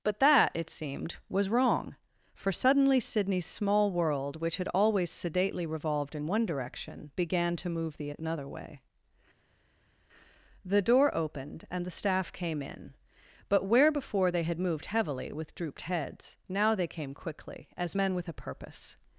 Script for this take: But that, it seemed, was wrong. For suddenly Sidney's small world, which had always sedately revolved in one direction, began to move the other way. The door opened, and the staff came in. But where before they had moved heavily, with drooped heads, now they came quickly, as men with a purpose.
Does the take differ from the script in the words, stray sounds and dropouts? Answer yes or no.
yes